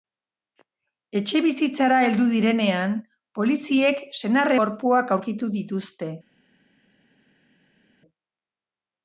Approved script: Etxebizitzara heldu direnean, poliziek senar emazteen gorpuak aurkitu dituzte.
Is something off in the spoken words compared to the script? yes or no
yes